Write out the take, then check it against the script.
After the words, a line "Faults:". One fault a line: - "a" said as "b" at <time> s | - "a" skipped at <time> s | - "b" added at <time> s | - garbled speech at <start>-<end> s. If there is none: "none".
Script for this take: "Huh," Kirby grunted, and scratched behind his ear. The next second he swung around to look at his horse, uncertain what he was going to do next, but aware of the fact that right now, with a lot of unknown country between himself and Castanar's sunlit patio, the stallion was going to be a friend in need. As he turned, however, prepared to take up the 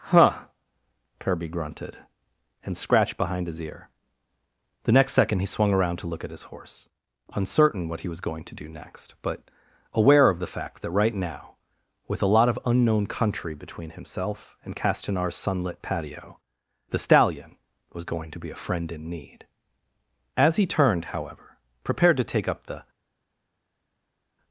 "Huh," Kirby grunted, and scratched behind his ear. The next second he swung around to look at his horse, uncertain what he was going to do next, but aware of the fact that right now, with a lot of unknown country between himself and Castanar's sunlit patio, the stallion was going to be a friend in need. As he turned, however, prepared to take up the
Faults:
none